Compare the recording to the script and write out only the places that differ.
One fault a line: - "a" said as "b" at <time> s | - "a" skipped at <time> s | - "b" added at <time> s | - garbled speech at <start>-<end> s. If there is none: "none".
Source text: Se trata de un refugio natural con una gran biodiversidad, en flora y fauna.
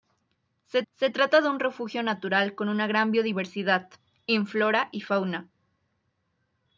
- "se" added at 0.9 s